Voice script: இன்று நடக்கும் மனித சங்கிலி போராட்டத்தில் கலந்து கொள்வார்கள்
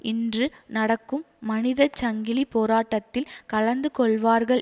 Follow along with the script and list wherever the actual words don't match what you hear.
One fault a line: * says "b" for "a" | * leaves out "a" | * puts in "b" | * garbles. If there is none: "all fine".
all fine